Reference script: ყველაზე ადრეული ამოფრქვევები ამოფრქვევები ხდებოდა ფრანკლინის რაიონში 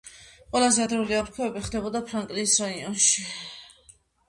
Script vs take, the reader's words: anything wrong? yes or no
yes